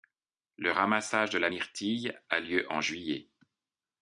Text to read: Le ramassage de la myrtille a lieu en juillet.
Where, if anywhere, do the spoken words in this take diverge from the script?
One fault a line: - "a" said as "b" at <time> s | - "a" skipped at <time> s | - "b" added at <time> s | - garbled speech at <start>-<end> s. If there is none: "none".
none